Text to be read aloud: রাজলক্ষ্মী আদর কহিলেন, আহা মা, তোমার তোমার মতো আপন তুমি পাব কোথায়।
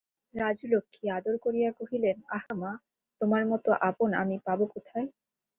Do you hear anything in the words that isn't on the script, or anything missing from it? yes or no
yes